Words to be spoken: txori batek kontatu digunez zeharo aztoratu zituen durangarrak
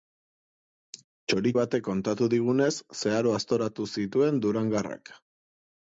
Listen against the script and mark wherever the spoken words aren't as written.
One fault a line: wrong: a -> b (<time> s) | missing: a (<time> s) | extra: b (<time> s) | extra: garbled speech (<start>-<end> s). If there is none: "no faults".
no faults